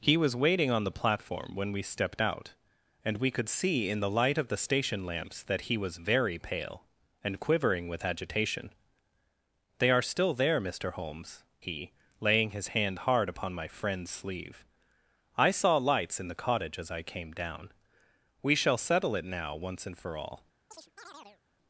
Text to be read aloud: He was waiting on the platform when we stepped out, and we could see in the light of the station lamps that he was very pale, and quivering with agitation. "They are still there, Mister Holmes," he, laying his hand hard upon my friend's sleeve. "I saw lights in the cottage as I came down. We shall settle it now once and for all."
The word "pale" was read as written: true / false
true